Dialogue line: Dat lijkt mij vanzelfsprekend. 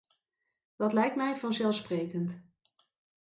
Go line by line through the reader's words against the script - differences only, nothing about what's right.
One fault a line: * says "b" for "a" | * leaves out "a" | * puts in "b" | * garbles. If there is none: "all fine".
all fine